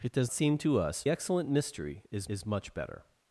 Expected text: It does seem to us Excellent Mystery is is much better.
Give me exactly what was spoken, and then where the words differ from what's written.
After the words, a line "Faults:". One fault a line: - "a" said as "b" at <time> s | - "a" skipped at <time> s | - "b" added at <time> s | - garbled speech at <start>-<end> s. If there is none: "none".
It does seem to us Excellent Mystery is is much better.
Faults:
none